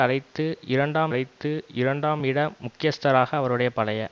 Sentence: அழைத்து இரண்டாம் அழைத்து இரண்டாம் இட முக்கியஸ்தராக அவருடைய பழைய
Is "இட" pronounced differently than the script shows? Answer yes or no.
no